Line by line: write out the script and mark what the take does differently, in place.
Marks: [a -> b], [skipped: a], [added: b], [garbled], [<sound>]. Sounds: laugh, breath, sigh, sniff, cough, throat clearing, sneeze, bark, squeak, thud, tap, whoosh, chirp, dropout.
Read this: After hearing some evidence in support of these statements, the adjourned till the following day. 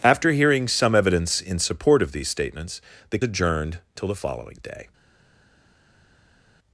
After hearing some evidence in support of these statements, the adjourned till the following day.